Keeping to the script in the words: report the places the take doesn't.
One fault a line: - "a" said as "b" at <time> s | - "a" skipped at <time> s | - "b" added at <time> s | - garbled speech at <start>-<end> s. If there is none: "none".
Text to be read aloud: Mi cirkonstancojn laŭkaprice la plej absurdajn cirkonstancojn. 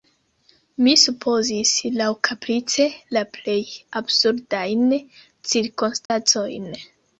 - "cirkonstancojn" said as "supozis" at 1.0 s